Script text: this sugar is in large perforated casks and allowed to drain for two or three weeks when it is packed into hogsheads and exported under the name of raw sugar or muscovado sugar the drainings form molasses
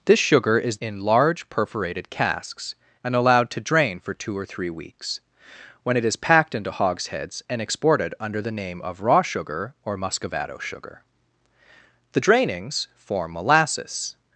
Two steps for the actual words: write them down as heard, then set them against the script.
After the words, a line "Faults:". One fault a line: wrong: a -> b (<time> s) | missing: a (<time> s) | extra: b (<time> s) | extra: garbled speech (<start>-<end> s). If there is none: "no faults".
this sugar is in large perforated casks and allowed to drain for two or three weeks when it is packed into hogsheads and exported under the name of raw sugar or muscovado sugar the drainings form molasses
Faults:
no faults